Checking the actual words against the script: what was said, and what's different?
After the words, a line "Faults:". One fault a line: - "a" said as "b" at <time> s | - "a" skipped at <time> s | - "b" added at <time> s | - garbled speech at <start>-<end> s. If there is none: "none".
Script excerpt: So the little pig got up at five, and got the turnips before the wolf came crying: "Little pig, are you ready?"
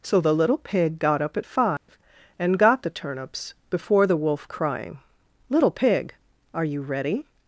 So the little pig got up at five, and got the turnips before the wolf crying: "Little pig, are you ready?"
Faults:
- "came" skipped at 4.5 s